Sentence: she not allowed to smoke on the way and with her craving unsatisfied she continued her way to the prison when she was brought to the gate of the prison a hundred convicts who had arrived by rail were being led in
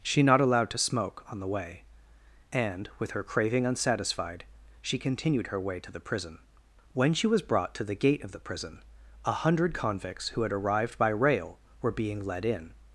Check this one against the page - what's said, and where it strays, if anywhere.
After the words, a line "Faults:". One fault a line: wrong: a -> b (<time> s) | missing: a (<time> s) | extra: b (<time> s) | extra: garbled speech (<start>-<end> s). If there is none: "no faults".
she not allowed to smoke on the way and with her craving unsatisfied she continued her way to the prison when she was brought to the gate of the prison a hundred convicts who had arrived by rail were being led in
Faults:
no faults